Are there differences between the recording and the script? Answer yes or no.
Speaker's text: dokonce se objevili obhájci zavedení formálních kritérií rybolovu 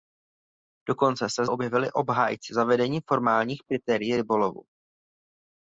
no